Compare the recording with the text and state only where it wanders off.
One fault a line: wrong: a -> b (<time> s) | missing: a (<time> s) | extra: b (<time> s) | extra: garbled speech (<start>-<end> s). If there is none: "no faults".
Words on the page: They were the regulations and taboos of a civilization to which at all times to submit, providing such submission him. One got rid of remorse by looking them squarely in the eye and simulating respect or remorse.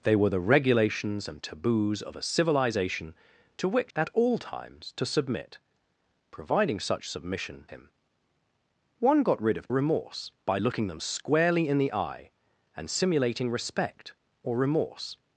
no faults